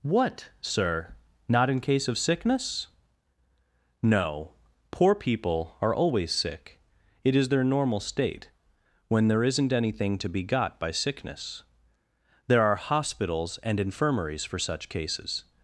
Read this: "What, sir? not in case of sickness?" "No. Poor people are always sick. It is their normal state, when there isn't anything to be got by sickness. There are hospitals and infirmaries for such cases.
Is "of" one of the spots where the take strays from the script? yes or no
no